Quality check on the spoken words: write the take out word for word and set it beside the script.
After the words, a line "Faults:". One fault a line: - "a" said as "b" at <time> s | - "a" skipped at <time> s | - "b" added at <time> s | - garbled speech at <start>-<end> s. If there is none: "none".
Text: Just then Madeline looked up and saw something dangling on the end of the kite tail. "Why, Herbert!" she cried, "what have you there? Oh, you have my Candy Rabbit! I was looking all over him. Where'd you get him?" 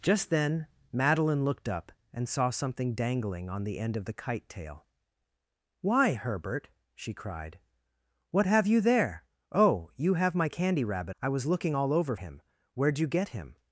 Just then Madeline looked up and saw something dangling on the end of the kite tail. "Why, Herbert!" she cried, "what have you there? Oh, you have my Candy Rabbit! I was looking all over him. Where'd you get him?"
Faults:
none